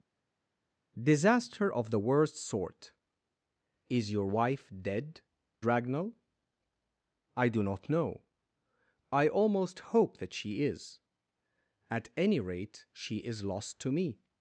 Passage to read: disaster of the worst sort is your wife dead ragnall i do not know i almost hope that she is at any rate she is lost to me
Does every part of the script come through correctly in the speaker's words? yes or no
yes